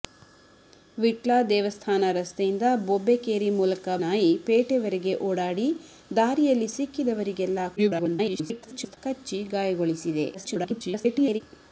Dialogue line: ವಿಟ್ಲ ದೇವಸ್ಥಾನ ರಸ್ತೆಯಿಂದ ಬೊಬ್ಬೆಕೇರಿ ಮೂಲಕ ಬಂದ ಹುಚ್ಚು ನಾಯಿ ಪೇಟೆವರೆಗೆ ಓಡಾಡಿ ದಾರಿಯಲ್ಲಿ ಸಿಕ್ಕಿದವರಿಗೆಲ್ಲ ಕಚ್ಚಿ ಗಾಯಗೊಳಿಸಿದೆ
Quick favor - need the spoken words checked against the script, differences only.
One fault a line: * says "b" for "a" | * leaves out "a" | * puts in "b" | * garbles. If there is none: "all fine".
* leaves out "ಬಂದ ಹುಚ್ಚು"
* garbles
* garbles